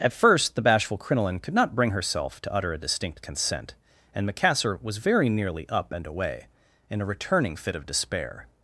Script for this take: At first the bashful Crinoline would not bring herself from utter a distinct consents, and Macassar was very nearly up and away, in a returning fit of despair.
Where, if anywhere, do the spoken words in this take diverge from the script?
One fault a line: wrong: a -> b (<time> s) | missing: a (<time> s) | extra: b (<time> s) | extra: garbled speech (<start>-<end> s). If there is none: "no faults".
wrong: would -> could (1.4 s)
wrong: from -> to (2.4 s)
wrong: consents -> consent (3.2 s)